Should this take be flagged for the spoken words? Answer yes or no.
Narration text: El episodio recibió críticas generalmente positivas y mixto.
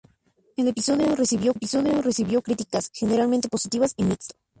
yes